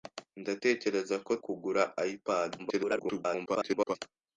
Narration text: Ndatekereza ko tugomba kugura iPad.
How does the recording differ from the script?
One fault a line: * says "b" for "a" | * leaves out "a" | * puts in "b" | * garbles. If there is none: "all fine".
* leaves out "tugomba"
* garbles